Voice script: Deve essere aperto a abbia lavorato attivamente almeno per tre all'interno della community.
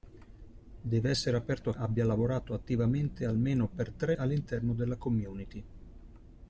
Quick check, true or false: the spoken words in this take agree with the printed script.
true